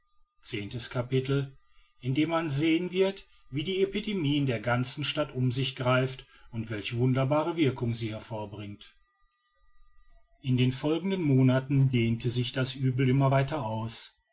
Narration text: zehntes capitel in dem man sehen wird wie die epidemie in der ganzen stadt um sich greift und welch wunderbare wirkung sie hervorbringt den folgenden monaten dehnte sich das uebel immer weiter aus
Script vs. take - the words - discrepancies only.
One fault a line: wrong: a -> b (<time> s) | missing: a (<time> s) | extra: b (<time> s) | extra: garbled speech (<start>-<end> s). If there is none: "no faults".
extra: in (10.4 s)